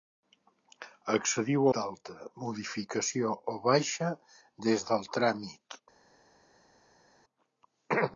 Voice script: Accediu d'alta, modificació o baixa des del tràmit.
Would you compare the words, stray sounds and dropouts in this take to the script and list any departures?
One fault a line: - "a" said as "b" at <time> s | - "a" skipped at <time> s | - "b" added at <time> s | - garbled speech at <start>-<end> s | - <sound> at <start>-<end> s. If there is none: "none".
none